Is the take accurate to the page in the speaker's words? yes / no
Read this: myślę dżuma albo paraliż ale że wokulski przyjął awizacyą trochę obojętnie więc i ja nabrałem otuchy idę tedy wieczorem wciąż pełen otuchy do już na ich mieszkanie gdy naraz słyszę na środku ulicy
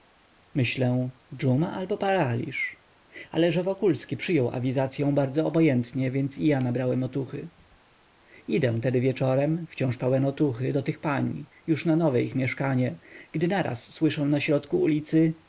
no